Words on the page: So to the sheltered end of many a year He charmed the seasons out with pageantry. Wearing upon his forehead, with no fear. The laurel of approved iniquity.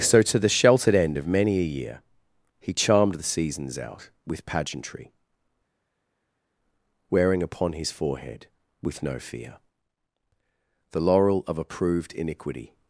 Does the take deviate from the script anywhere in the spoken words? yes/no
no